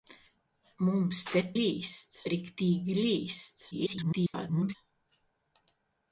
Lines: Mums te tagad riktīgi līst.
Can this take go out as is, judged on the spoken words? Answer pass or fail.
fail